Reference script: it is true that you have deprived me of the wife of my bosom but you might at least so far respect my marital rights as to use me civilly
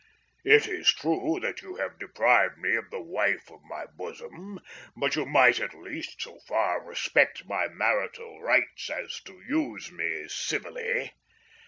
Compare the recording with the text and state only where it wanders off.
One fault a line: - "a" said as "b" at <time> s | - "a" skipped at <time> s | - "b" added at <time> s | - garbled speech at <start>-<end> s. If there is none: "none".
none